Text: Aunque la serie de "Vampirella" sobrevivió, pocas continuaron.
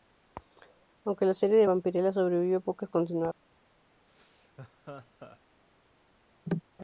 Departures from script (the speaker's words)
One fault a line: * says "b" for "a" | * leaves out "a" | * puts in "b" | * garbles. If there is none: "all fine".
all fine